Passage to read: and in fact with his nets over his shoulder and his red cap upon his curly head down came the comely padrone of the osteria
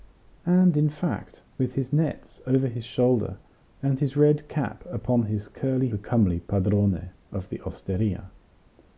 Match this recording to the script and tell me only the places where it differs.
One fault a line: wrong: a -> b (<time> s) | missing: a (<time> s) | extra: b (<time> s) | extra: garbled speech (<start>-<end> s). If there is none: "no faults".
missing: head down came (5.9 s)